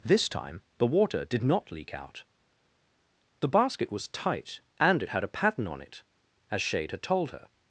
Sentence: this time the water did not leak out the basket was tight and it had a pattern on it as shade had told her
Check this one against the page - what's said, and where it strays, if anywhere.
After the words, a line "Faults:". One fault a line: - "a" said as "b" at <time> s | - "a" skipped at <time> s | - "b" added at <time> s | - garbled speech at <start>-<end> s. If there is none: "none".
this time the water did not leak out the basket was tight and it had a pattern on it as shade had told her
Faults:
none